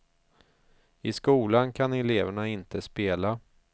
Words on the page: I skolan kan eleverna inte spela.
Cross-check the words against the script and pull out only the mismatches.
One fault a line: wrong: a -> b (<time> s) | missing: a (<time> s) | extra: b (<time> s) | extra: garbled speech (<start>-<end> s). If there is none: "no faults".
no faults